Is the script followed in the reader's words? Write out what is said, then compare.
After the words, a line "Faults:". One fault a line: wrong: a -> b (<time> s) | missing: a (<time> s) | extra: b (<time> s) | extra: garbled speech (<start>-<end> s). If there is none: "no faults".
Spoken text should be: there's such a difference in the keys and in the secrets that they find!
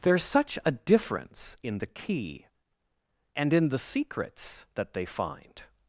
there's such a difference in the key and in the secrets that they find!
Faults:
wrong: keys -> key (1.9 s)